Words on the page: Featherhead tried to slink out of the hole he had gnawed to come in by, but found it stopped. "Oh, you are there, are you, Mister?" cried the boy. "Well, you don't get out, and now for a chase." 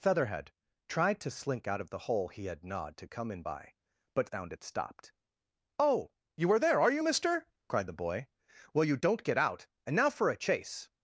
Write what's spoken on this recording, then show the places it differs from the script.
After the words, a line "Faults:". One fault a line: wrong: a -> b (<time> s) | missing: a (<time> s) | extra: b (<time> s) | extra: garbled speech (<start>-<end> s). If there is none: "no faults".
Featherhead tried to slink out of the hole he had gnawed to come in by, but found it stopped. "Oh, you are there, are you, Mister?" cried the boy. "Well, you don't get out, and now for a chase."
Faults:
no faults